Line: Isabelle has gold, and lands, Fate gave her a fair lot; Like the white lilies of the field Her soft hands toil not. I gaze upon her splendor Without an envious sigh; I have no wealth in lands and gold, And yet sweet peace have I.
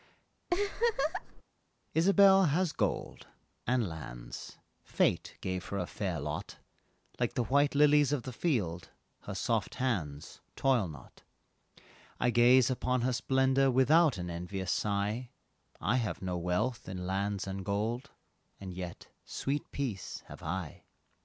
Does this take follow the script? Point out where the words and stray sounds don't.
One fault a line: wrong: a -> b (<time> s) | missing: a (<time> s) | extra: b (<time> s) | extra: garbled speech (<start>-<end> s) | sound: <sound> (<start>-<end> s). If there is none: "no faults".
sound: laugh (0.5-1.4 s)